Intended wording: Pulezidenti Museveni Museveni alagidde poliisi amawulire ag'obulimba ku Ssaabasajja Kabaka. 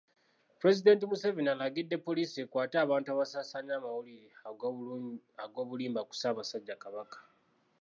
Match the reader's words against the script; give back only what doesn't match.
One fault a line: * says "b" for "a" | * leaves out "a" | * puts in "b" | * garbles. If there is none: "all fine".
* leaves out "Museveni"
* puts in "ekwate abantu abasaasaanya"